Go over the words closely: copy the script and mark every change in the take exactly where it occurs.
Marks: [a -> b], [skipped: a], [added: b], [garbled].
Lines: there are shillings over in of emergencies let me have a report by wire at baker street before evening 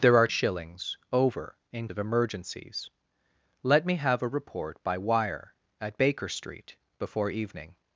there are shillings over in of emergencies let me have a report by wire at baker street before evening